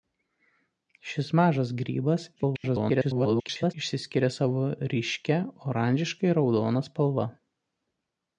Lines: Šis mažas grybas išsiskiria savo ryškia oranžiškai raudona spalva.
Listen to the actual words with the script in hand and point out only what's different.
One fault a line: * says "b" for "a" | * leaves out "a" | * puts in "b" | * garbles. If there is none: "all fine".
* garbles